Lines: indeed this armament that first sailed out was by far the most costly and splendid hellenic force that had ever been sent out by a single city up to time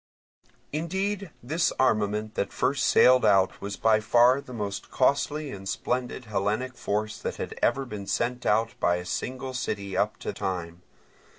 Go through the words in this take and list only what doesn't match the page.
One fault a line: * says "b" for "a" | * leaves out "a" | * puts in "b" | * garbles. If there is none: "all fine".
all fine